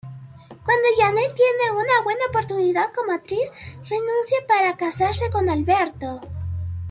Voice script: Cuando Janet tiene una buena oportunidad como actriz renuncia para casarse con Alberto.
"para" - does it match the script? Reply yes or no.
yes